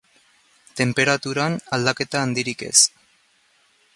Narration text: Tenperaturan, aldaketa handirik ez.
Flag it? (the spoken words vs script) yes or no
no